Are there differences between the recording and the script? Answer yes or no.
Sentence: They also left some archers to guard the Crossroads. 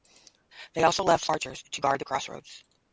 yes